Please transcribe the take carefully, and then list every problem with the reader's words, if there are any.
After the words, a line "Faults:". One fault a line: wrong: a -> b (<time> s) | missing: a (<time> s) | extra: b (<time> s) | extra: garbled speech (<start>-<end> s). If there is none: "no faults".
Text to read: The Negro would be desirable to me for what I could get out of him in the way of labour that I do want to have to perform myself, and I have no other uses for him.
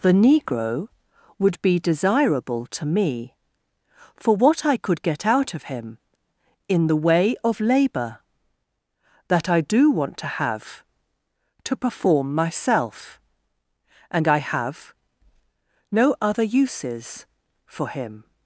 The Negro would be desirable to me for what I could get out of him in the way of labour that I do want to have to perform myself, and I have no other uses for him.
Faults:
no faults